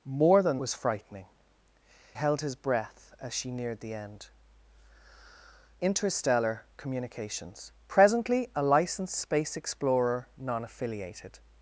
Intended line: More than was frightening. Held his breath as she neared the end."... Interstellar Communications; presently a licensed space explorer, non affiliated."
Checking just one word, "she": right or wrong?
right